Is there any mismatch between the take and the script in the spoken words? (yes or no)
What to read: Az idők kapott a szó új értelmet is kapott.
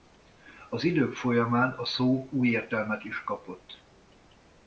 yes